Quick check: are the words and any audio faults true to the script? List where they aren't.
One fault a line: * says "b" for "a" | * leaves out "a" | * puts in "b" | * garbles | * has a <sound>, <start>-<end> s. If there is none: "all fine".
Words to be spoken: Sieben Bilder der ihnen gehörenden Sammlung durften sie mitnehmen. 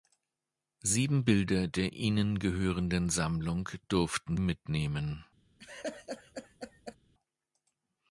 * leaves out "sie"
* has a laugh, 5.6-7.0 s